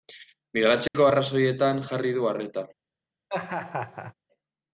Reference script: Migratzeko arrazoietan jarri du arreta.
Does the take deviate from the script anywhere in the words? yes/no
no